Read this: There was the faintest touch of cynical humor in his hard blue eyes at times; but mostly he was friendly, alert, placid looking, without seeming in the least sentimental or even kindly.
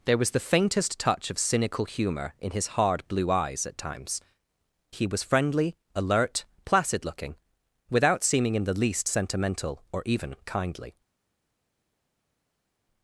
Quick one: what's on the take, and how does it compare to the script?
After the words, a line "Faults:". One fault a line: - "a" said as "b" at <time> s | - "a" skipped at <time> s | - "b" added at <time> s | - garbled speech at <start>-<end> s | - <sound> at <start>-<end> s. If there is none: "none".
There was the faintest touch of cynical humor in his hard blue eyes at times; he was friendly, alert, placid looking, without seeming in the least sentimental or even kindly.
Faults:
- "but mostly" skipped at 4.2 s